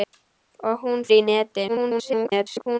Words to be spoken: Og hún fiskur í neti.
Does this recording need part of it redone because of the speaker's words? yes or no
yes